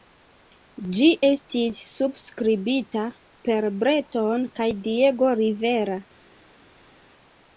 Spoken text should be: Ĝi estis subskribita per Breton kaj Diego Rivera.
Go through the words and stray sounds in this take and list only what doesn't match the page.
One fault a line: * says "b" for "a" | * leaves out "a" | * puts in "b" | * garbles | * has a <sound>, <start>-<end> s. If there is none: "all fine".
all fine